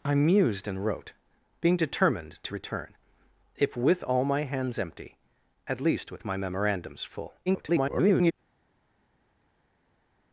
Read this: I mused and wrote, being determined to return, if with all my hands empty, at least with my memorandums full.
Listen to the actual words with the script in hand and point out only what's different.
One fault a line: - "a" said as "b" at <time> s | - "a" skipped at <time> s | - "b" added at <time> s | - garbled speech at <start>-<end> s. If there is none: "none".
- garbled speech at 7.5-8.3 s